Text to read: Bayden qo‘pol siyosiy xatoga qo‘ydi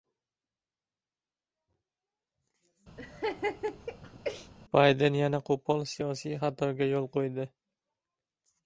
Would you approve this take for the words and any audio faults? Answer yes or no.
no